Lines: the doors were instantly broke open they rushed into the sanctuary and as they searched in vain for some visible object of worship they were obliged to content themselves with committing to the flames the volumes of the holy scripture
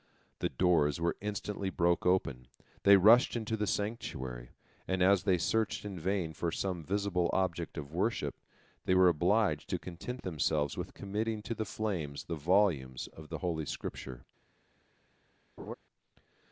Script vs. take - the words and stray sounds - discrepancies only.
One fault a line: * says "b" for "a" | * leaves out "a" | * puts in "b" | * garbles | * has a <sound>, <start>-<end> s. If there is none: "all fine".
* has a laugh, 15.6-15.7 s